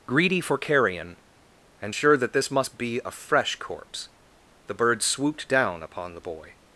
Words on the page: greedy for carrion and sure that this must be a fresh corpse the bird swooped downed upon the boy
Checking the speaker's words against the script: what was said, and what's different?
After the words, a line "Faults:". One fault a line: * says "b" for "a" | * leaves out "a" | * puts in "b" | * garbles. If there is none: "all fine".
greedy for carrion and sure that this must be a fresh corpse the bird swooped down upon the boy
Faults:
* says "down" for "downed"